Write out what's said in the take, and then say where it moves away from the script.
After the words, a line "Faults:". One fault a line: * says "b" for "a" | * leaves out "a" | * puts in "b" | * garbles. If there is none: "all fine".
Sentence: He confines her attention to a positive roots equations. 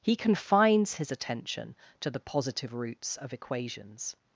He confines his attention to the positive roots of equations.
Faults:
* says "his" for "her"
* says "the" for "a"
* puts in "of"